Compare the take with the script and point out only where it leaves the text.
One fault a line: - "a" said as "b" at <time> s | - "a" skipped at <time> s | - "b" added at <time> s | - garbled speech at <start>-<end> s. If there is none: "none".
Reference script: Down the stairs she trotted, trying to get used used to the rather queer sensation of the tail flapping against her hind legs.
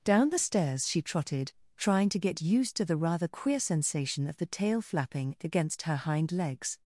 - "used" skipped at 2.8 s